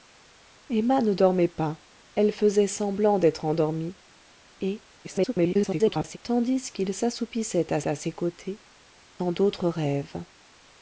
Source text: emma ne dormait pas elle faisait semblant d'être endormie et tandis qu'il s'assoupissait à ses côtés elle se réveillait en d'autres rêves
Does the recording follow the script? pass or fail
fail